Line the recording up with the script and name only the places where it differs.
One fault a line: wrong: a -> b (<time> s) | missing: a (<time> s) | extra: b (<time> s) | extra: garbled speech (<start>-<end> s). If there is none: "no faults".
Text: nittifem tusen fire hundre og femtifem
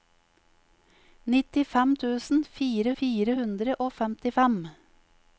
extra: fire (3.0 s)